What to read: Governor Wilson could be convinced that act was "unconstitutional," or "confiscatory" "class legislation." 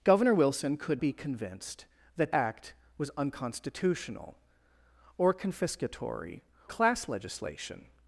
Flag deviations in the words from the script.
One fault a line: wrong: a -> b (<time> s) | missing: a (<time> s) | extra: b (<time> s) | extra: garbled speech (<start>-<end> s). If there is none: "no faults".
no faults